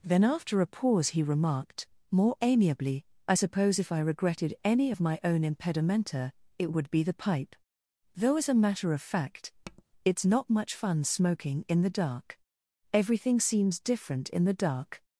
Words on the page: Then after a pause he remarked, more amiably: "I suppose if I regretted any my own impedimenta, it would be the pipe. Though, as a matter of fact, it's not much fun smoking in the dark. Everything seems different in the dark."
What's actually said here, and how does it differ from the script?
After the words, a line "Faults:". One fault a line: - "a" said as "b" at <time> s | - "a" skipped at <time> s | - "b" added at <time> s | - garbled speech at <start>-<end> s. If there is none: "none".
Then after a pause he remarked, more amiably: "I suppose if I regretted any of my own impedimenta, it would be the pipe. Though, as a matter of fact, it's not much fun smoking in the dark. Everything seems different in the dark."
Faults:
- "of" added at 4.9 s